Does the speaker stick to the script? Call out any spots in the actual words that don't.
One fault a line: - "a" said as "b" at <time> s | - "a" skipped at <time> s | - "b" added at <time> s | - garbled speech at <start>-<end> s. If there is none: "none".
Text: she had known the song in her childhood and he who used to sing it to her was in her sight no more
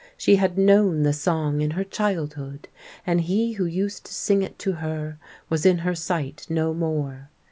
none